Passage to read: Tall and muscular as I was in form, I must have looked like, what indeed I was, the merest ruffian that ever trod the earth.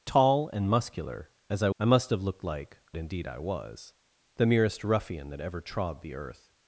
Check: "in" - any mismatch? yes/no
yes